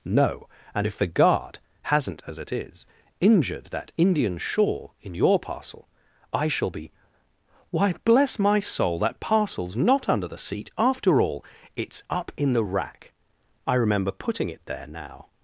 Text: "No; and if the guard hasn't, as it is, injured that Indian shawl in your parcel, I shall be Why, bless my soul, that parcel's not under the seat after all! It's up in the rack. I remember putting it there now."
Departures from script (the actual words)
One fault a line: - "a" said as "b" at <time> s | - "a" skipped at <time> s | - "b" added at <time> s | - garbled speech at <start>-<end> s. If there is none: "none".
none